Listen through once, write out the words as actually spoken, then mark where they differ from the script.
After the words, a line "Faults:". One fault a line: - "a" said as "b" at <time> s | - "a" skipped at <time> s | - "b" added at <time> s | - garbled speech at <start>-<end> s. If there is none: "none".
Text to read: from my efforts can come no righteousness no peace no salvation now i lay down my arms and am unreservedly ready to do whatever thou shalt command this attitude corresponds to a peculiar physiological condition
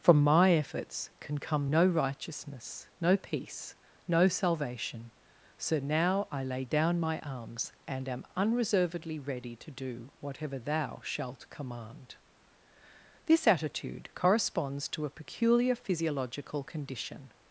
from my efforts can come no righteousness no peace no salvation so now i lay down my arms and am unreservedly ready to do whatever thou shalt command this attitude corresponds to a peculiar physiological condition
Faults:
- "so" added at 5.6 s